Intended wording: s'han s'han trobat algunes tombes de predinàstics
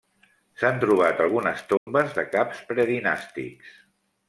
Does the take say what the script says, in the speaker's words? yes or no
no